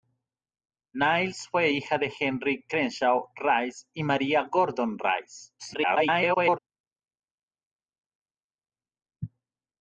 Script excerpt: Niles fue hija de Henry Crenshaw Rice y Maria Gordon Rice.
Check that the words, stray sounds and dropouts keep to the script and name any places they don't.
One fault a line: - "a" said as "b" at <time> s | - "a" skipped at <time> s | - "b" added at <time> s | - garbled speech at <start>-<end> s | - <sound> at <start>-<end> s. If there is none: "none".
- garbled speech at 5.6-6.6 s